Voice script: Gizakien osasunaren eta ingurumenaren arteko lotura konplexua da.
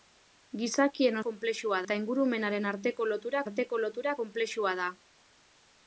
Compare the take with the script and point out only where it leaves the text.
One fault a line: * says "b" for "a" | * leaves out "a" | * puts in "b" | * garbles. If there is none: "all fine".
* says "konplexua" for "osasunaren"
* puts in "arteko lotura"